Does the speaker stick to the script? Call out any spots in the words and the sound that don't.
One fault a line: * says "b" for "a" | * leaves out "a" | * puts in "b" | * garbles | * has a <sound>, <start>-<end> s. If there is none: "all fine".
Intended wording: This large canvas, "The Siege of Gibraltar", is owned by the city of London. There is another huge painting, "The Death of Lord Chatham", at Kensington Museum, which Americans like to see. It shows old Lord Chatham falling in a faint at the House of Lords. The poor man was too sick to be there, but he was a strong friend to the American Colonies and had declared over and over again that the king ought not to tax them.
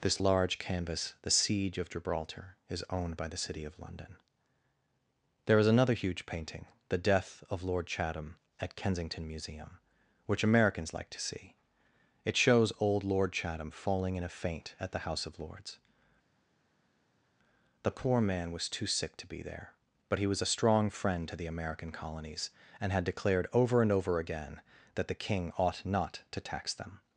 all fine